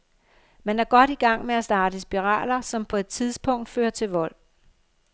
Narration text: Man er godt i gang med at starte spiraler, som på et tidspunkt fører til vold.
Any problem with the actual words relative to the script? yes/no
no